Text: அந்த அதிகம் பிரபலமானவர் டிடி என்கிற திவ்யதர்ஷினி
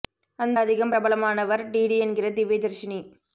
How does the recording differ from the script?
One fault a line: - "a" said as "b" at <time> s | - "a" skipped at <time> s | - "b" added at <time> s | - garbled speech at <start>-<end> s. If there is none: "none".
none